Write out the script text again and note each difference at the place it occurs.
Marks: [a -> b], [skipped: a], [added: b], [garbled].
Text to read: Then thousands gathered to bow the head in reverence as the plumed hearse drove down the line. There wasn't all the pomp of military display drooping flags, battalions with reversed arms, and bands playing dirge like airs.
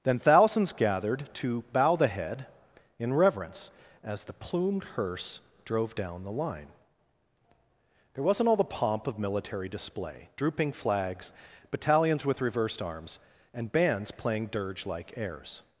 Then thousands gathered to bow the head in reverence as the plumed hearse drove down the line. There wasn't all the pomp of military display drooping flags, battalions with reversed arms, and bands playing dirge like airs.